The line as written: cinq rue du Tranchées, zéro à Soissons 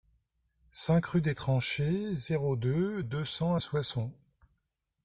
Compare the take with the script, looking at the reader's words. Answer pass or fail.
fail